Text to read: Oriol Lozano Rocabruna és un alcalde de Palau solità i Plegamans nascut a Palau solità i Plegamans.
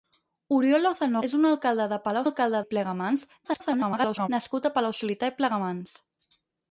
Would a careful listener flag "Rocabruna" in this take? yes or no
yes